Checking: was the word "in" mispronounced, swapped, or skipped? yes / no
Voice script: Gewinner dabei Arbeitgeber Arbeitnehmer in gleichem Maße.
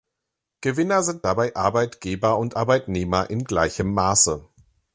no